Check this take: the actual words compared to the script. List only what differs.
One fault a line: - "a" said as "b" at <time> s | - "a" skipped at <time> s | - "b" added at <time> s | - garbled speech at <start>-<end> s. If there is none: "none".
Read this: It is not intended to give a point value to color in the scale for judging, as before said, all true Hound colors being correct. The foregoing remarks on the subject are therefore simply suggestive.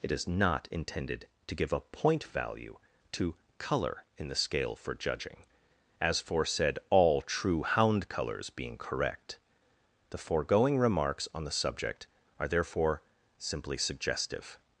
- "before" said as "for" at 6.2 s